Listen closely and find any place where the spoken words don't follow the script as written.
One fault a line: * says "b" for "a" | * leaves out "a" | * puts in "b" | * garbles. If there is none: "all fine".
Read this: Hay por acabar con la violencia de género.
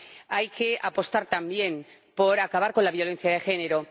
* puts in "que apostar también"